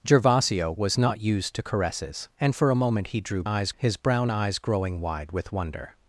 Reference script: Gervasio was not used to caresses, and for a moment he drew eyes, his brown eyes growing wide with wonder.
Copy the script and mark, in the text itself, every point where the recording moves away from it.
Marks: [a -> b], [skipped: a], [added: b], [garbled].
Gervasio was not used to caresses, and for a moment he drew eyes, his brown eyes growing wide with wonder.